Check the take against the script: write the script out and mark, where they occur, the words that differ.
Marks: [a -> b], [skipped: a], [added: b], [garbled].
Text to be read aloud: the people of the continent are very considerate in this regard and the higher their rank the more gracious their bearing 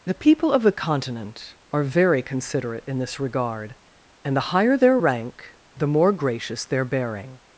the people of the continent are very considerate in this regard and the higher their rank the more gracious their bearing